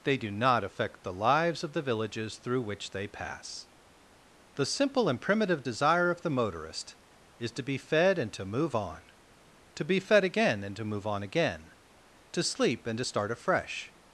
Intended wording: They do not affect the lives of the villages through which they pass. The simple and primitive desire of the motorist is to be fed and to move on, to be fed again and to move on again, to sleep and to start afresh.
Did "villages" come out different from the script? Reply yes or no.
no